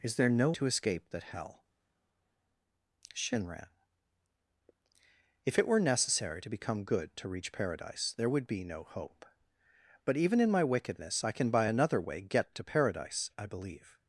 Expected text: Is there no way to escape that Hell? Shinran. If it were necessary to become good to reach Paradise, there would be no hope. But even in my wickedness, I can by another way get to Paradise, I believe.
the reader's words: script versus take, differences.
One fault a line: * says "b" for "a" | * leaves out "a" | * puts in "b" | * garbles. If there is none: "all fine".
* leaves out "way"